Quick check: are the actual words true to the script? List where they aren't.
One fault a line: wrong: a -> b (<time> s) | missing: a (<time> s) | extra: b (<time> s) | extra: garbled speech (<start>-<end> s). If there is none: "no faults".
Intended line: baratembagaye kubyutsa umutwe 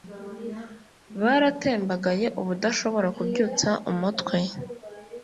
extra: ubudashobora (2.4 s)